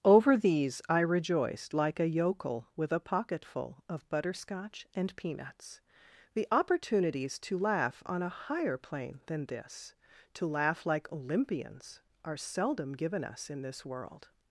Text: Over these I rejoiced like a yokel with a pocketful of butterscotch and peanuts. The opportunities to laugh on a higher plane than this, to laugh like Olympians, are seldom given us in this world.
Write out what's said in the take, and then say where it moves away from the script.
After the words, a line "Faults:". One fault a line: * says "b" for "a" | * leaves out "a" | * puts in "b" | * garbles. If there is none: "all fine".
Over these I rejoiced like a yokel with a pocketful of butterscotch and peanuts. The opportunities to laugh on a higher plane than this, to laugh like Olympians, are seldom given us in this world.
Faults:
all fine